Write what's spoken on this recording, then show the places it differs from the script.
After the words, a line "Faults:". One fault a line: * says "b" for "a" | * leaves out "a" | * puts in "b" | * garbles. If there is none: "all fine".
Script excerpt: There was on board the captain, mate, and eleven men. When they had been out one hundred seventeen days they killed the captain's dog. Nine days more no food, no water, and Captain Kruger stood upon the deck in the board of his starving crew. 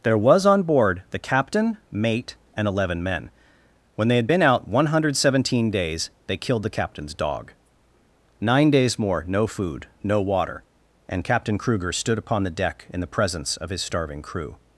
There was on board the captain, mate, and eleven men. When they had been out one hundred seventeen days they killed the captain's dog. Nine days more no food, no water, and Captain Kruger stood upon the deck in the presence of his starving crew.
Faults:
* says "presence" for "board"